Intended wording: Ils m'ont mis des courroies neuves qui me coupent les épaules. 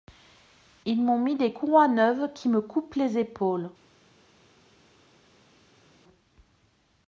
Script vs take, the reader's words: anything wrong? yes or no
no